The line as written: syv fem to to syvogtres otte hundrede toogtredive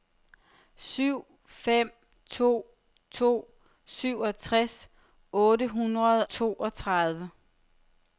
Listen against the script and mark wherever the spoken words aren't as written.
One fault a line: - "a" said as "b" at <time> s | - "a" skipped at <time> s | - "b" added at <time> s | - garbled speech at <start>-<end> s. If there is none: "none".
none